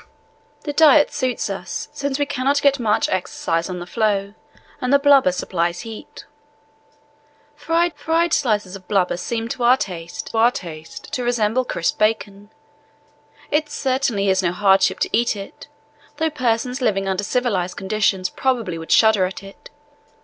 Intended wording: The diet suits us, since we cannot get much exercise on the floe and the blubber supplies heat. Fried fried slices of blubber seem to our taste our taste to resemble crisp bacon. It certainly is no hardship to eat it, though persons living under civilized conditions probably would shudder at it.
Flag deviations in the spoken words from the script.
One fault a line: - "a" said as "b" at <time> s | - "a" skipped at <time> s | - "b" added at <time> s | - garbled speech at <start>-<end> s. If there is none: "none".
none